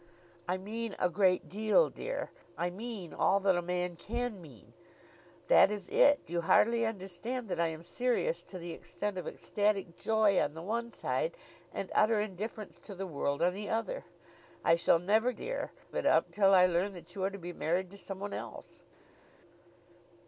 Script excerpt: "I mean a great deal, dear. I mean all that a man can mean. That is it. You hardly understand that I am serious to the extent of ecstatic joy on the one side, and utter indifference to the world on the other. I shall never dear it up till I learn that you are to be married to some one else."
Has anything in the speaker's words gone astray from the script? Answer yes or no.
no